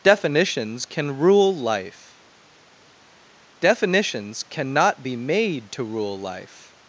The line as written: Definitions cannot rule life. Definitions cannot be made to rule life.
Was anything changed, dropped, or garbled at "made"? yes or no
no